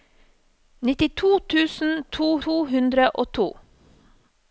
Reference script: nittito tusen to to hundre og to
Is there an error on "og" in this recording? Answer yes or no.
no